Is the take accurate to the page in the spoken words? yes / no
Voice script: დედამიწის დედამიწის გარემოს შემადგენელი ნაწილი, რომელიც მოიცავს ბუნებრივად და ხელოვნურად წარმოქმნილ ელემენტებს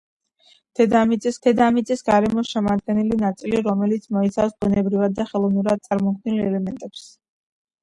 yes